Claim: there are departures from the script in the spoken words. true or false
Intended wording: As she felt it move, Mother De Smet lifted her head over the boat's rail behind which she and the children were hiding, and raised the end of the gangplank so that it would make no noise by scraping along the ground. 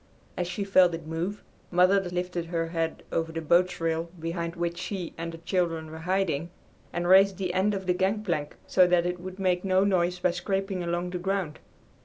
true